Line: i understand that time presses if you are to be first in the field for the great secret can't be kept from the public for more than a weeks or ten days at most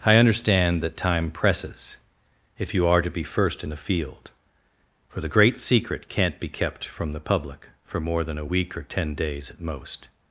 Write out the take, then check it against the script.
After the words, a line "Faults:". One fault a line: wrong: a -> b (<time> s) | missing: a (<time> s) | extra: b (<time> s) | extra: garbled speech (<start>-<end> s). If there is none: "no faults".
i understand that time presses if you are to be first in the field for the great secret can't be kept from the public for more than a week or ten days at most
Faults:
wrong: weeks -> week (8.4 s)